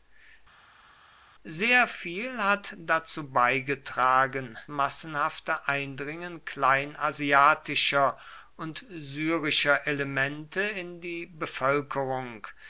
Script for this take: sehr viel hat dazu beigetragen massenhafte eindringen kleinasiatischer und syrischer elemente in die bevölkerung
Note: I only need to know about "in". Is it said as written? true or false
true